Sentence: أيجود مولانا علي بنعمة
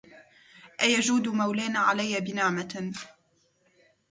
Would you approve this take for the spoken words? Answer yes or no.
yes